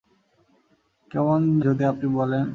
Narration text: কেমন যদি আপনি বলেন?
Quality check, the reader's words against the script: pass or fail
pass